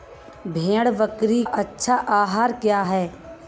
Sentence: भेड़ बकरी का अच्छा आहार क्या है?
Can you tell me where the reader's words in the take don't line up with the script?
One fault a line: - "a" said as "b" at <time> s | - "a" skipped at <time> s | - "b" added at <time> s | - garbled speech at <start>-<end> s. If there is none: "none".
- "का" skipped at 1.4 s